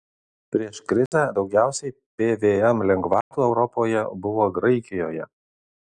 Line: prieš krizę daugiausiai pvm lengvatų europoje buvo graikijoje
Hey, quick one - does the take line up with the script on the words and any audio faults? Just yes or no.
no